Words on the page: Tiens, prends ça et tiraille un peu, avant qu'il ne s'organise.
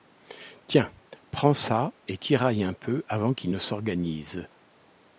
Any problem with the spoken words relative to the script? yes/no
no